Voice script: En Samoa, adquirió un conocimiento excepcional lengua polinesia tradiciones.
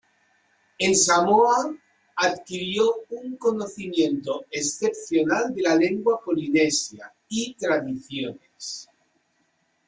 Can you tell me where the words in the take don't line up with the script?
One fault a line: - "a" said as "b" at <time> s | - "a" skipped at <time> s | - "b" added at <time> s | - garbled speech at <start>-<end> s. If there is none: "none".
- "de la" added at 5.5 s
- "y" added at 7.3 s